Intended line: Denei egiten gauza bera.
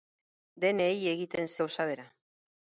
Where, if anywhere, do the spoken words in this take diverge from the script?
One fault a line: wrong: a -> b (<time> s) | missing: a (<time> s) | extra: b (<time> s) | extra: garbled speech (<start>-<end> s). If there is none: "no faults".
no faults